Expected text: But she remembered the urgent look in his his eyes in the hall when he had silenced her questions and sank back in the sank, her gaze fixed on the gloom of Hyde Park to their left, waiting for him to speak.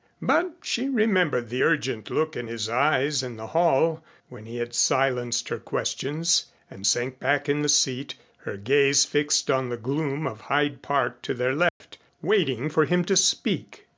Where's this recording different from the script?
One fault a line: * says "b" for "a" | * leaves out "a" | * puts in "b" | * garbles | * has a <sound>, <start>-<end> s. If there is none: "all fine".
* leaves out "his"
* says "seat" for "sank"
* has a dropout, 11.7-11.8 s